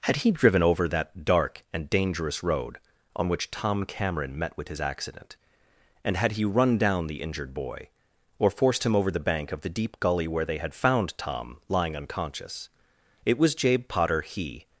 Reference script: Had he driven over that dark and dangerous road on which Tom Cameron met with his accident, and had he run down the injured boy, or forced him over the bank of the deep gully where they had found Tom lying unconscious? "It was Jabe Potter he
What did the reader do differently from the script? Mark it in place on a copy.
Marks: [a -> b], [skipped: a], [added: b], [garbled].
Had he driven over that dark and dangerous road on which Tom Cameron met with his accident, and had he run down the injured boy, or forced him over the bank of the deep gully where they had found Tom lying unconscious? "It was Jabe Potter he